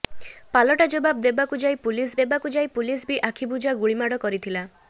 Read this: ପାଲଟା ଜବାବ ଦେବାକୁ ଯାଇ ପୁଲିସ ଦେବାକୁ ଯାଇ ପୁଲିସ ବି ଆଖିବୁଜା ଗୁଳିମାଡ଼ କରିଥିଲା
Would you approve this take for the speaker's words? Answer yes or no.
yes